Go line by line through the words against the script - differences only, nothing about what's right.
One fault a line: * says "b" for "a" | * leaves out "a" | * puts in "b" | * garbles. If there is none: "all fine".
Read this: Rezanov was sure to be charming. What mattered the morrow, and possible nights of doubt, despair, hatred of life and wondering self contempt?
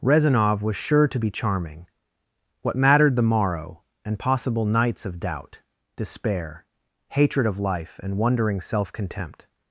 all fine